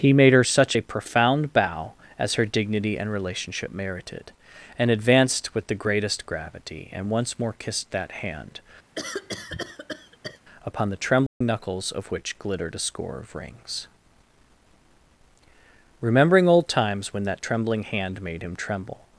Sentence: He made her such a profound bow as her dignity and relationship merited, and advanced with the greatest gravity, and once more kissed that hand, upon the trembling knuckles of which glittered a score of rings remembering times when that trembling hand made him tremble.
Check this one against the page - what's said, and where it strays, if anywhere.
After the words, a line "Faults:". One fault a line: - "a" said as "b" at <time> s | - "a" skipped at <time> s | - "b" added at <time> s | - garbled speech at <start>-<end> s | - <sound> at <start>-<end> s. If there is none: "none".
He made her such a profound bow as her dignity and relationship merited, and advanced with the greatest gravity, and once more kissed that hand, upon the trembling knuckles of which glittered a score of rings remembering old times when that trembling hand made him tremble.
Faults:
- cough at 8.9-10.4 s
- dropout at 11.3-11.4 s
- "old" added at 16.5 s